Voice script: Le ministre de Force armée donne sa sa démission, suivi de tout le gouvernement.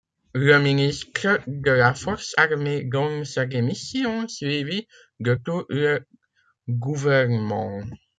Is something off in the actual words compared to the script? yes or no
yes